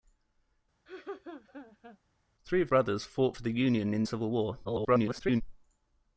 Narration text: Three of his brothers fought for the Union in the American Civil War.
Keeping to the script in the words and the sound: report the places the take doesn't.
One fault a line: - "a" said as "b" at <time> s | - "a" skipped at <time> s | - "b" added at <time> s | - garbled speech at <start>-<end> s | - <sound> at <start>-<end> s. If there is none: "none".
- laugh at 0.9-2.0 s
- "his" skipped at 2.7 s
- "the American" skipped at 4.0 s
- garbled speech at 4.6-5.4 s